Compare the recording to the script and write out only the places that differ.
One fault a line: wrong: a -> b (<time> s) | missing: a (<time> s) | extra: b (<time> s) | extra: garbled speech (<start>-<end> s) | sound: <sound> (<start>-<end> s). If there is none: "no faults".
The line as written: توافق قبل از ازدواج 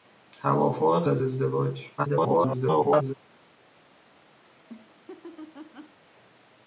missing: قبل (1.1 s)
extra: garbled speech (2.0-3.1 s)
sound: laugh (4.4-6.0 s)